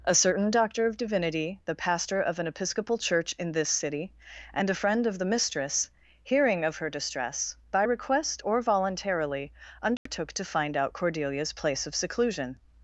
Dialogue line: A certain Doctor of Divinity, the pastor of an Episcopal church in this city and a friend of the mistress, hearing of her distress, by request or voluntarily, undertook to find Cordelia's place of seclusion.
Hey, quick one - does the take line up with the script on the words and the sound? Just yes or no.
no